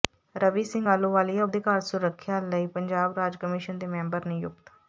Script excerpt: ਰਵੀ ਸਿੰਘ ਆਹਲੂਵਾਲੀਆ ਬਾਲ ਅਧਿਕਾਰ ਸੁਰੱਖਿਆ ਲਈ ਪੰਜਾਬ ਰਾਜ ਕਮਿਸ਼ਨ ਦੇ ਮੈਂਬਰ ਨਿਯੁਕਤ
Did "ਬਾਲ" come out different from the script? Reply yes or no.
yes